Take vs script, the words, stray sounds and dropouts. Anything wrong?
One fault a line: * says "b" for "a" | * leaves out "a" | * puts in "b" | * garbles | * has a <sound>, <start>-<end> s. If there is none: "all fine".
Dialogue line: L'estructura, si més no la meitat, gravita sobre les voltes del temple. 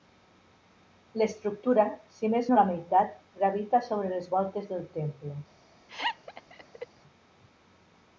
* has a laugh, 5.9-6.9 s